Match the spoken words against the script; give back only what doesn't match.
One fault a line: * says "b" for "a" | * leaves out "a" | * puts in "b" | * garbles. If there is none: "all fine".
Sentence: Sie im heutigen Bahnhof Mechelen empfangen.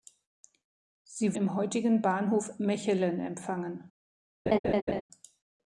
all fine